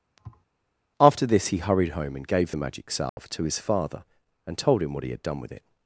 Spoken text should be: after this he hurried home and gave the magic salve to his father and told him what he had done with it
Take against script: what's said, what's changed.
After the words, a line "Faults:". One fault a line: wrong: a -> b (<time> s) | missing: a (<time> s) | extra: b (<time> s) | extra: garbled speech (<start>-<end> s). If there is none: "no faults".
after this he hurried home and gave the magic salve to his father and told him what he had done with it
Faults:
no faults